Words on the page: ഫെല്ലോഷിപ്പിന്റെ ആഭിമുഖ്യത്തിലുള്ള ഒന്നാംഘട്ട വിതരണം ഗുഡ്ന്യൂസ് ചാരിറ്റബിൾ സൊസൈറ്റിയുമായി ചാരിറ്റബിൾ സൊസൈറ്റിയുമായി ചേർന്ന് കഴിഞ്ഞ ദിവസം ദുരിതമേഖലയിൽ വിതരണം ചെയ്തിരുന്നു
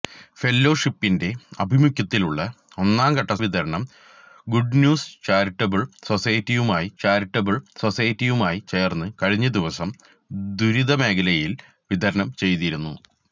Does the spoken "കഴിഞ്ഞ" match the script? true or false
true